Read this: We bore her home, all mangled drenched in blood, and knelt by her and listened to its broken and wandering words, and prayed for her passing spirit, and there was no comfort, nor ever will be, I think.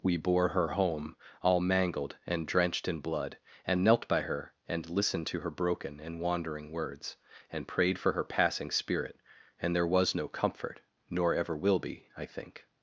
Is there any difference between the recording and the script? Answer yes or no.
yes